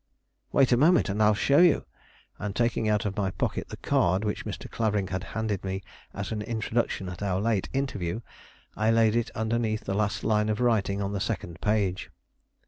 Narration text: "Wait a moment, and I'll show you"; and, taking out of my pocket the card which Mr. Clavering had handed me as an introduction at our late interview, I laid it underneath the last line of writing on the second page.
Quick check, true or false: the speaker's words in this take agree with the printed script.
true